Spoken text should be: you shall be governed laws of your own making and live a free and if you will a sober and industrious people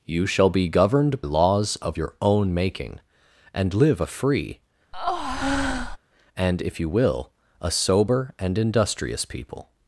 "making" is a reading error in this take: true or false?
false